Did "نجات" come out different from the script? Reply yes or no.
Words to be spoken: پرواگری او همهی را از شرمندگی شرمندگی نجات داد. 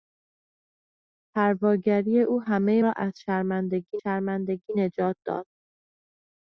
no